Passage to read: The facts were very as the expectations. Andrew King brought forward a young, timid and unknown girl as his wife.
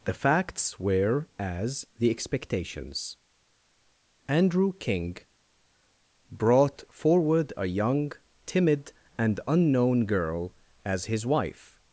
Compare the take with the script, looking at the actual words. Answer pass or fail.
fail